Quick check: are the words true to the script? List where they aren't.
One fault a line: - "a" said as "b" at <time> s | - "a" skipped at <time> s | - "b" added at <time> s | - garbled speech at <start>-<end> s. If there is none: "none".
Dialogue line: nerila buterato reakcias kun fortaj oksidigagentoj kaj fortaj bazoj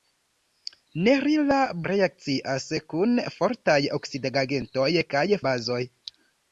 - "buterato" skipped at 1.6 s
- "fortaj" skipped at 5.2 s